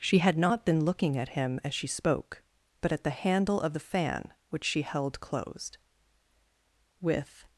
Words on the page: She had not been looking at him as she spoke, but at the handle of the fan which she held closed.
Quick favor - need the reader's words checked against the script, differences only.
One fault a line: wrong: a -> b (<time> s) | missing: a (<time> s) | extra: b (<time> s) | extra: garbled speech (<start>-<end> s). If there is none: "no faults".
extra: With (7.0 s)